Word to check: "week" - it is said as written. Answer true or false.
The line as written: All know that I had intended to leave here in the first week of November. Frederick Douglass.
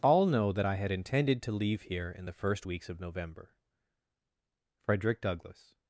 false